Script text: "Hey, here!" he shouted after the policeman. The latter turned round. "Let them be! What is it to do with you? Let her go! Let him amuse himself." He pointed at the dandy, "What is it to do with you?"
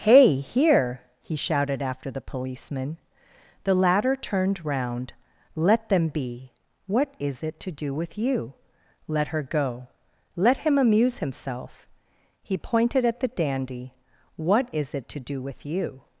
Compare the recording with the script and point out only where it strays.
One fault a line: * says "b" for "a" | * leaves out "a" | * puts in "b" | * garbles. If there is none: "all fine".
all fine